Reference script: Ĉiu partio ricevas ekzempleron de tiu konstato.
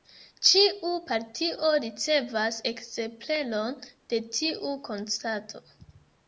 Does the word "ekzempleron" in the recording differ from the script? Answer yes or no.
no